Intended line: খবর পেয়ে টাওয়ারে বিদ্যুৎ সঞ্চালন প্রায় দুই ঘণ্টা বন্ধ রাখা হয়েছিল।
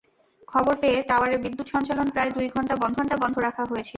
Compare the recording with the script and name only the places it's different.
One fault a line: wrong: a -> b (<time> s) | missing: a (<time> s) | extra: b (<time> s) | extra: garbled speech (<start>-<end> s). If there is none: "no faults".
extra: ঘণ্টা বন্ধ (3.0 s)